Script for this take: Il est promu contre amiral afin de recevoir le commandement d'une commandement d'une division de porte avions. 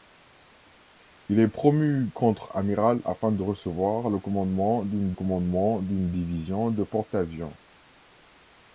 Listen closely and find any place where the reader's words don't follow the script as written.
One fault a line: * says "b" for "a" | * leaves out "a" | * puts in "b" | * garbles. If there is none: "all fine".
all fine